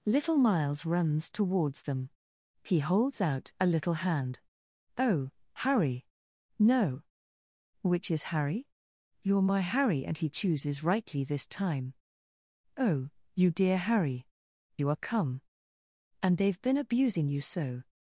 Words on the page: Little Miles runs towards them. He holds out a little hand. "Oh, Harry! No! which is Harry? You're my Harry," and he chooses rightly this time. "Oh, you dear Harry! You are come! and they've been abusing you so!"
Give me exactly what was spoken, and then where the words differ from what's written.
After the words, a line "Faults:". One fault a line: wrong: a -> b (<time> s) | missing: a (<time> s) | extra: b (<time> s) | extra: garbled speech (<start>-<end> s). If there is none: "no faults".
Little Miles runs towards them. He holds out a little hand. "Oh, Harry! No! which is Harry? You're my Harry," and he chooses rightly this time. "Oh, you dear Harry! You are come! and they've been abusing you so!"
Faults:
no faults